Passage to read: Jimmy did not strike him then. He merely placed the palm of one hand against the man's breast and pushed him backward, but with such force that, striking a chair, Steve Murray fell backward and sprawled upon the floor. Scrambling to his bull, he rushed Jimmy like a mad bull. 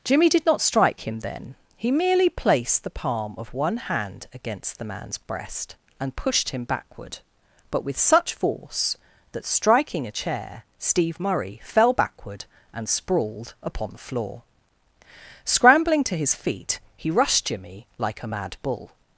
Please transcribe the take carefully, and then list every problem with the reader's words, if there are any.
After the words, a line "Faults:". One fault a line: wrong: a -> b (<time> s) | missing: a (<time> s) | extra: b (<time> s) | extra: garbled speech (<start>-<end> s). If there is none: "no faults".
Jimmy did not strike him then. He merely placed the palm of one hand against the man's breast and pushed him backward, but with such force that, striking a chair, Steve Murray fell backward and sprawled upon the floor. Scrambling to his feet, he rushed Jimmy like a mad bull.
Faults:
wrong: bull -> feet (16.4 s)